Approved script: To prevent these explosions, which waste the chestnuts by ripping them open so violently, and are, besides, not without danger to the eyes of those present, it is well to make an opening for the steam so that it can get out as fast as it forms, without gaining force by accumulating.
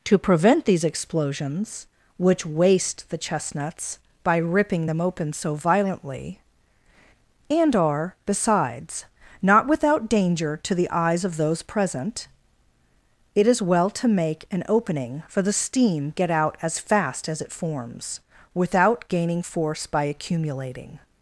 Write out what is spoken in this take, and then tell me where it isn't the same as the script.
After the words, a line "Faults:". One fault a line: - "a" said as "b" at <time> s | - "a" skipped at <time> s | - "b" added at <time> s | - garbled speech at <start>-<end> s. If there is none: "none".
To prevent these explosions, which waste the chestnuts by ripping them open so violently, and are, besides, not without danger to the eyes of those present, it is well to make an opening for the steam get out as fast as it forms, without gaining force by accumulating.
Faults:
- "so that it can" skipped at 16.1 s